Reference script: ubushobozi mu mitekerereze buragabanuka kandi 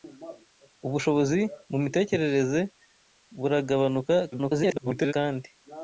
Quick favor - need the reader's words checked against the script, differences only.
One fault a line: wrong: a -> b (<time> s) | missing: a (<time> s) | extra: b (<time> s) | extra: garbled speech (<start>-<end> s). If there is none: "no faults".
extra: garbled speech (4.3-5.1 s)